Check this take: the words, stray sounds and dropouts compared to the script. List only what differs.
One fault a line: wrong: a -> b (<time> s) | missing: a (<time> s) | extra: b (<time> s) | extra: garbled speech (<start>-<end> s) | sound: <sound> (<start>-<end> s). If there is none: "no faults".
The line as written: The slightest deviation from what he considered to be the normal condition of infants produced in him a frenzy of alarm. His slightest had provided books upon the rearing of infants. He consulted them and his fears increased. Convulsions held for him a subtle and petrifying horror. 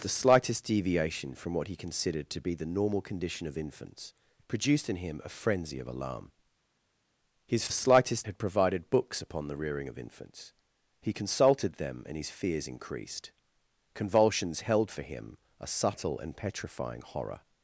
no faults